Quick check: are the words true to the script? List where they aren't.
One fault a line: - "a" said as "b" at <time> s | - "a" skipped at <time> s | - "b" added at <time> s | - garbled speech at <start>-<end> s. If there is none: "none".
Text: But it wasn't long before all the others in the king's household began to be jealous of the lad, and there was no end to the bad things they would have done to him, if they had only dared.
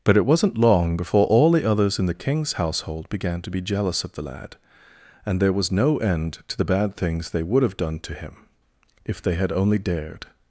none